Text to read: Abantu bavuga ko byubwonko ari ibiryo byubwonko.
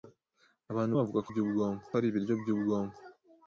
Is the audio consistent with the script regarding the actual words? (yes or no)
yes